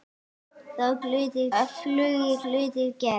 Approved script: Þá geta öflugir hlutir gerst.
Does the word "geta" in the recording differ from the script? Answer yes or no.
yes